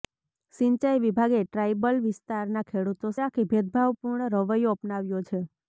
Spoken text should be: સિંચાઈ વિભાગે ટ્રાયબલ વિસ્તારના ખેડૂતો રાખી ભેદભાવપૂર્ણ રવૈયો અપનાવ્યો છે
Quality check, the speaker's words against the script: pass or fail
pass